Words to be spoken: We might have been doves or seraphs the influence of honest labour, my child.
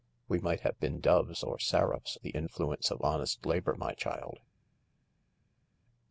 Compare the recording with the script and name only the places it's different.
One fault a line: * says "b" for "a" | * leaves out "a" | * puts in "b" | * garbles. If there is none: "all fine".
all fine